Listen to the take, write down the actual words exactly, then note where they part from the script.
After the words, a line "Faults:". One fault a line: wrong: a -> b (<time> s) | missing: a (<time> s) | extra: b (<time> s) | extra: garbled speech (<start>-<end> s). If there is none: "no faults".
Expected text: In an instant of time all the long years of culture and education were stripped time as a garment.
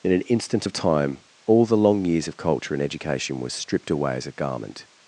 In an instant of time all the long years of culture and education were stripped away as a garment.
Faults:
wrong: time -> away (3.9 s)